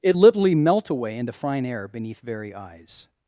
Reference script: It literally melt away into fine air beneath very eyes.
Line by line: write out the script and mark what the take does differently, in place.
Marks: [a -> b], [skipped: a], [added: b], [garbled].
It literally melt away into fine air beneath very eyes.